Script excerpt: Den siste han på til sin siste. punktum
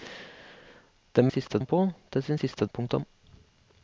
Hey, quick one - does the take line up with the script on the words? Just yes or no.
yes